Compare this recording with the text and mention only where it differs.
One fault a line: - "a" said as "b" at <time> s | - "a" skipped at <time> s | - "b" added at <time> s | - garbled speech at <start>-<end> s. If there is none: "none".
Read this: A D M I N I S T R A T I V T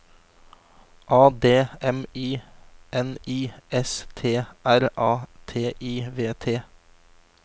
none